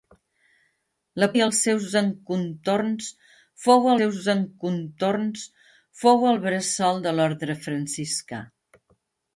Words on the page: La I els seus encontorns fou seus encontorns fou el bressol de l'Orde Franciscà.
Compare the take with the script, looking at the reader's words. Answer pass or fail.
pass